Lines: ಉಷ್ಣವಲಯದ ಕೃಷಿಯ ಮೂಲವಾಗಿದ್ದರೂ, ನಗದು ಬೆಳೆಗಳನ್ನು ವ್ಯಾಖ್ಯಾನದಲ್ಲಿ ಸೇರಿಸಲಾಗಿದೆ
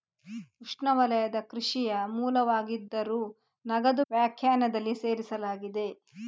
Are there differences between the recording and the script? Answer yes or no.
yes